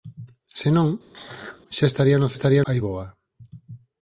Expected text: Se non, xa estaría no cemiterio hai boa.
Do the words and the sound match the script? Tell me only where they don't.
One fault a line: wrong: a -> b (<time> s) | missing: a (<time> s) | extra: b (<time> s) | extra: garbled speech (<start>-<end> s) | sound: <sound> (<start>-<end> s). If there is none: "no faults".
sound: throat clearing (1.1-1.6 s)
wrong: cemiterio -> estaría (2.3 s)